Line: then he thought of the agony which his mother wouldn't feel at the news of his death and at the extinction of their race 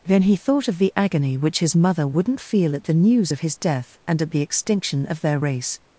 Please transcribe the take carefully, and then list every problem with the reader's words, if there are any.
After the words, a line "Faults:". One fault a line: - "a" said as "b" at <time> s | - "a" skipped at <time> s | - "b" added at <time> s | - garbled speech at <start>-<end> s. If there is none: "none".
then he thought of the agony which his mother wouldn't feel at the news of his death and at the extinction of their race
Faults:
none